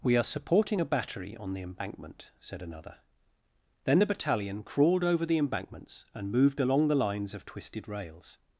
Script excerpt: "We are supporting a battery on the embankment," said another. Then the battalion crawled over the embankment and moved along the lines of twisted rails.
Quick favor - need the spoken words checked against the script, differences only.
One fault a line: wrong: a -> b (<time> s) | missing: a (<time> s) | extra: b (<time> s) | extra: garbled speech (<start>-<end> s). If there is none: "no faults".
wrong: embankment -> embankments (5.4 s)